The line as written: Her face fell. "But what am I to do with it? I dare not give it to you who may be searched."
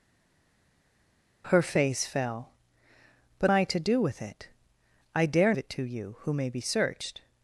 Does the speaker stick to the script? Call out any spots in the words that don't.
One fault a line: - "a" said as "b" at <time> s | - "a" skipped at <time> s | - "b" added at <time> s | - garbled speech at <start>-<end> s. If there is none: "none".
- "what am" skipped at 3.5 s
- "not give" skipped at 5.5 s